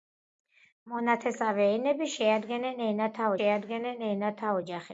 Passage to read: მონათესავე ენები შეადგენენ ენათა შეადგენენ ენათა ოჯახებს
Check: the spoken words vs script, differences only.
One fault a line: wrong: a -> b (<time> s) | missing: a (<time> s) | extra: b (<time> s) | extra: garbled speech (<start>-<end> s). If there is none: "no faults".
no faults